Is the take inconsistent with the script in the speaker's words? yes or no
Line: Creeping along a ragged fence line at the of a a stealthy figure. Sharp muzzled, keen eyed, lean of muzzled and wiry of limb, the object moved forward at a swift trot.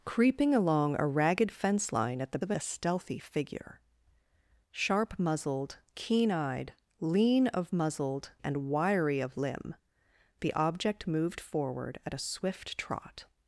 no